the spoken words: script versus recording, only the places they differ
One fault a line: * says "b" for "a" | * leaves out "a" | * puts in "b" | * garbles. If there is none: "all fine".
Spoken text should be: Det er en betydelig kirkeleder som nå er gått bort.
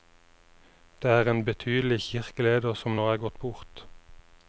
all fine